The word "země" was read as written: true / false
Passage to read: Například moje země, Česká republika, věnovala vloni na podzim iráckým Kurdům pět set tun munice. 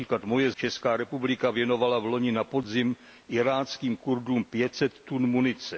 false